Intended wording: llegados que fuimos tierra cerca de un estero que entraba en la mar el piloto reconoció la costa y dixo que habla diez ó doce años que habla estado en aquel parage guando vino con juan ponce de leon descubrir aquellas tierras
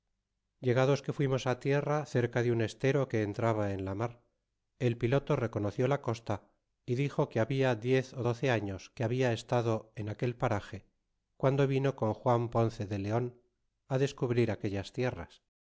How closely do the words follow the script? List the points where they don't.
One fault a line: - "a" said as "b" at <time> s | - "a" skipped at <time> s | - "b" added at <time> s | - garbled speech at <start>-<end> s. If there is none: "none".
none